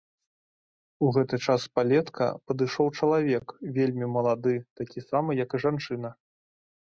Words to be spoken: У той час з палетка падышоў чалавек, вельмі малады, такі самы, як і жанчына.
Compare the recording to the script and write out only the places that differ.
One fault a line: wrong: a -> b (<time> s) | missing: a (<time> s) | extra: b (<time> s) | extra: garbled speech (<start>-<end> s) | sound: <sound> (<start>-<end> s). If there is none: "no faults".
wrong: той -> гэты (1.2 s)